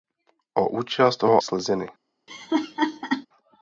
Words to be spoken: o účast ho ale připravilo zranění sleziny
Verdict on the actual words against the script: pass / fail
fail